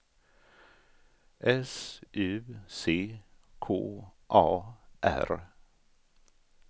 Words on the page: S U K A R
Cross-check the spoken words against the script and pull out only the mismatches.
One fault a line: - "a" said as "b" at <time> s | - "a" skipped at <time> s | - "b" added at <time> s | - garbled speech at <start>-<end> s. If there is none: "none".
- "C" added at 2.7 s